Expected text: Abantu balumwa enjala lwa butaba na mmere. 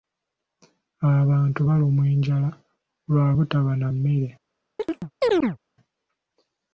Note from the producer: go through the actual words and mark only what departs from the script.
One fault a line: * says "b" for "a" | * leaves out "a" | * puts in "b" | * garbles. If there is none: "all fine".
all fine